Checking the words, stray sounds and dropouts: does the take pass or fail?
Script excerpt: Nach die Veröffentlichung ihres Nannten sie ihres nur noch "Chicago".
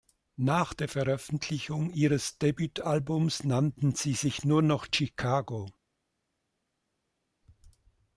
fail